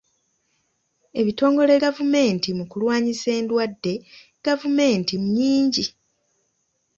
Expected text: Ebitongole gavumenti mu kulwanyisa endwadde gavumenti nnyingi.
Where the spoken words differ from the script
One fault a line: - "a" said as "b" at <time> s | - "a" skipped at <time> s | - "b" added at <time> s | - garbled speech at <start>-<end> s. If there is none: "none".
none